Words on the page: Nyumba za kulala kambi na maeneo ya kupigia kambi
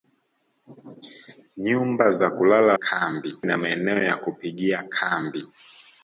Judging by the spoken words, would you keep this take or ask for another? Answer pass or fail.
pass